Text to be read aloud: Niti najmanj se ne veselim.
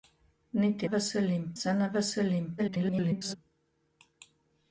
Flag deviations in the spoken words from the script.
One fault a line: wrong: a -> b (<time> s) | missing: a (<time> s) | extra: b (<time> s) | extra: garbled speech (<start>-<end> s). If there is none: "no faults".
wrong: najmanj -> veselim (0.9 s)
extra: garbled speech (2.6-3.4 s)